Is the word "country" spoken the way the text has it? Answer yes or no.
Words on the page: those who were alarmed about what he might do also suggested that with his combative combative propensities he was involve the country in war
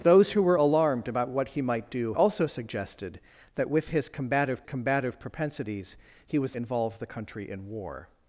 yes